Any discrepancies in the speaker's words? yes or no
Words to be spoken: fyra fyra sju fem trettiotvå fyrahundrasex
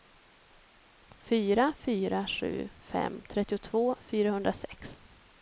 no